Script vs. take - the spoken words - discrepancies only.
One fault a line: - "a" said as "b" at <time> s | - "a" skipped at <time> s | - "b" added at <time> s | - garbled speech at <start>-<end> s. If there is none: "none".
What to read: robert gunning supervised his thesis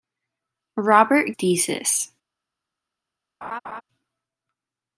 - "gunning supervised his" skipped at 1.4 s